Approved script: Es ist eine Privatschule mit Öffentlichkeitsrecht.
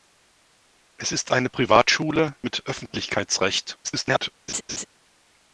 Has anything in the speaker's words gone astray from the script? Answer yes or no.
yes